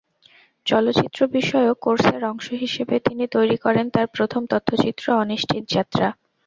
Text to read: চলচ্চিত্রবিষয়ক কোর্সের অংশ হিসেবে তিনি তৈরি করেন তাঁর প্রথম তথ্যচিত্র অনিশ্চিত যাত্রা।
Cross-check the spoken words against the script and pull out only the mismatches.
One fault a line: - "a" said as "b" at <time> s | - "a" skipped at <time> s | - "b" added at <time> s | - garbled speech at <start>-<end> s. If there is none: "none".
none